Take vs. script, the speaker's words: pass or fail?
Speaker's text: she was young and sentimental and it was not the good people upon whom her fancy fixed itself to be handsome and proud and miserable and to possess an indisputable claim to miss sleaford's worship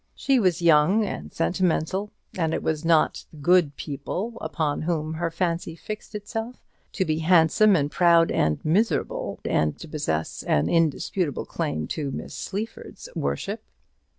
pass